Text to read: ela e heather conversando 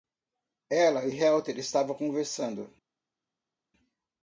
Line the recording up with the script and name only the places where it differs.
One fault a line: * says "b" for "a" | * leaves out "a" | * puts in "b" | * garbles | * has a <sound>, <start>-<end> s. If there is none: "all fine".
* puts in "estavam"